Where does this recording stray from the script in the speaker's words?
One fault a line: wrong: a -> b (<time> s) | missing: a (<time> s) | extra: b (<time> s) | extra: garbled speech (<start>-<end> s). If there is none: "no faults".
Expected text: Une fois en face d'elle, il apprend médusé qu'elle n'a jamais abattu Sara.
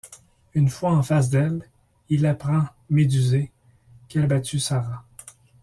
missing: n'a jamais (4.2 s)